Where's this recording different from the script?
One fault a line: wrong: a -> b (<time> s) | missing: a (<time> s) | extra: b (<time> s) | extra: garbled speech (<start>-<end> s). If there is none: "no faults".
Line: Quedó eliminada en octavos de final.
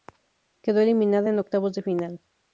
no faults